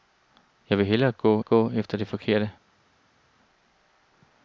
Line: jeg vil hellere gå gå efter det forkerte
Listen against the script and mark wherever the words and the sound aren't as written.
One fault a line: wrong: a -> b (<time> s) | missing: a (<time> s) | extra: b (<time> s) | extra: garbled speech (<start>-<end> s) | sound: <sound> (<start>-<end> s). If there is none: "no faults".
no faults